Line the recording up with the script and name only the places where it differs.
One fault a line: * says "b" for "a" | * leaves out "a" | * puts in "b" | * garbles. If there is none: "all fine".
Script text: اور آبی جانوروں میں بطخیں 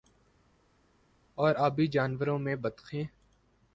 all fine